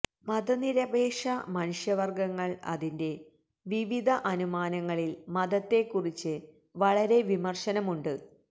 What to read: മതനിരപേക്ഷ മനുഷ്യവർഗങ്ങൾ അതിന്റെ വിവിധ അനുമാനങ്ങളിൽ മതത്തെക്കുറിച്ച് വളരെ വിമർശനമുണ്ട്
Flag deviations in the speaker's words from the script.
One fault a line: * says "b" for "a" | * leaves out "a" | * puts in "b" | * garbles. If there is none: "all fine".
all fine